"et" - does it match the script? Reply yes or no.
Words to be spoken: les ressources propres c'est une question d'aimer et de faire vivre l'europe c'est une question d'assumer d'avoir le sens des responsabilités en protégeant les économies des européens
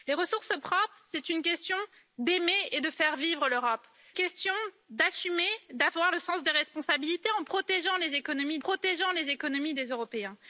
yes